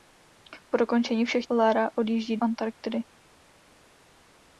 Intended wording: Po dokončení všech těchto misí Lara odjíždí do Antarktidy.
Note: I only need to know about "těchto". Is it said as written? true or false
false